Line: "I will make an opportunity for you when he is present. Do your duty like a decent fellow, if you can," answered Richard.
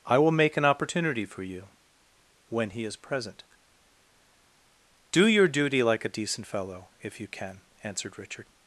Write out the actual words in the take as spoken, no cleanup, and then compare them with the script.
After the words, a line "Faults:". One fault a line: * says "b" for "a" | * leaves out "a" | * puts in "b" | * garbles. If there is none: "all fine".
"I will make an opportunity for you when he is present. Do your duty like a decent fellow, if you can," answered Richard.
Faults:
all fine